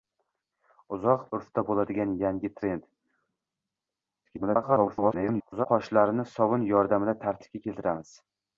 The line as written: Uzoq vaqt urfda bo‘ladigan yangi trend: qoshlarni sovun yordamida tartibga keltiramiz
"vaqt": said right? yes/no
no